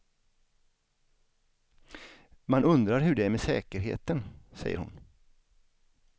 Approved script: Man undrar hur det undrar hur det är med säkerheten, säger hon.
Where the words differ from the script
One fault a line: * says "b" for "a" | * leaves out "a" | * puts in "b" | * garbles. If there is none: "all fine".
* leaves out "undrar hur det"